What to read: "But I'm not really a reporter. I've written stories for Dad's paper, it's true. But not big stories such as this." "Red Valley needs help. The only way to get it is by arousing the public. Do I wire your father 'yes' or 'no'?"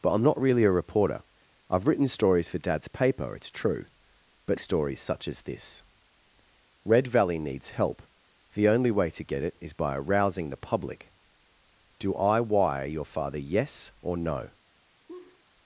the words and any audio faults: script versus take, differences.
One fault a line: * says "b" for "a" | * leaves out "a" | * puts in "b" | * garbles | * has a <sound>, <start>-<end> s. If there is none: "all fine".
* leaves out "not big"
* has a laugh, 15.1-15.4 s